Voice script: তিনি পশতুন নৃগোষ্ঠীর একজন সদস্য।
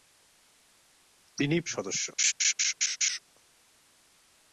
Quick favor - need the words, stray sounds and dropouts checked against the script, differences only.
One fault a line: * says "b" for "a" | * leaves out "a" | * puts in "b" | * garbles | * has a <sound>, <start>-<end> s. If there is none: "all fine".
* leaves out "পশতুন নৃগোষ্ঠীর একজন"
* has a laugh, 2.2-3.2 s